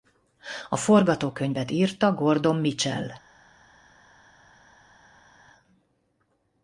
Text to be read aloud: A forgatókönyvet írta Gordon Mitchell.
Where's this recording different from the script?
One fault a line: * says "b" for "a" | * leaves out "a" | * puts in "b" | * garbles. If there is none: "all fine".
all fine